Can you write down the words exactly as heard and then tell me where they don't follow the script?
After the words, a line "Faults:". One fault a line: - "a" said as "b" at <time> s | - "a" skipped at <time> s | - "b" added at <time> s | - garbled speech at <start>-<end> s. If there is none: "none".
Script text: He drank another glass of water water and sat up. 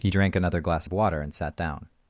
He drank another glass of water and sat down.
Faults:
- "water" skipped at 1.2 s
- "up" said as "down" at 1.6 s